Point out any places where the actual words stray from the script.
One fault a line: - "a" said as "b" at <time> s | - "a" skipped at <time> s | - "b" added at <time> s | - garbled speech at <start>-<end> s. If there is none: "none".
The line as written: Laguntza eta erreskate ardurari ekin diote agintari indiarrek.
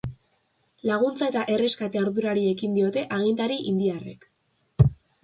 none